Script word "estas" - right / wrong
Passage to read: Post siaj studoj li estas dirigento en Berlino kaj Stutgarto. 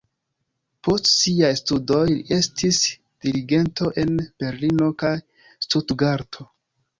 wrong